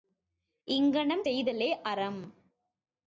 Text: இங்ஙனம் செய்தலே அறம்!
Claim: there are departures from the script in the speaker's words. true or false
false